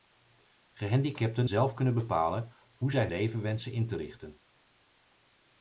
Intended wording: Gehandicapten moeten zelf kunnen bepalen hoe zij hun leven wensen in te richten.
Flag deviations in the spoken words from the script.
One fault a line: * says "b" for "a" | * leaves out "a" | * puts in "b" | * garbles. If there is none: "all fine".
* leaves out "moeten"
* leaves out "hun"